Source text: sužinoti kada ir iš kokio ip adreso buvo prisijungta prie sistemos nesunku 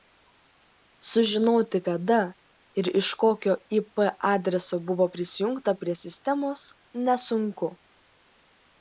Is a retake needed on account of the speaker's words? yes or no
no